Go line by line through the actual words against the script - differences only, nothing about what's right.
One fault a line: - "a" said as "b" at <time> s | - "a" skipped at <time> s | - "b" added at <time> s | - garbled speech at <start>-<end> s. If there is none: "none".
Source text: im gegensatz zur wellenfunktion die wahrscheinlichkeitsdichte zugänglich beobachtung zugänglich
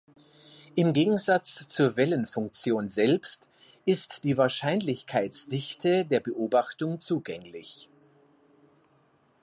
- "selbst ist" added at 2.9 s
- "zugänglich" said as "der" at 6.1 s